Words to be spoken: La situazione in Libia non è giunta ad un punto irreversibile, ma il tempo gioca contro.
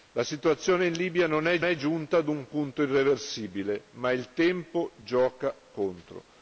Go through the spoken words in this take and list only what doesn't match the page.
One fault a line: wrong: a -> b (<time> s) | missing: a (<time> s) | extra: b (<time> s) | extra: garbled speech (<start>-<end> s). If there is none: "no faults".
extra: è (1.6 s)